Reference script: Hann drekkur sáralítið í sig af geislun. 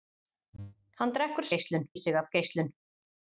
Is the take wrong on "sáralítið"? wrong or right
wrong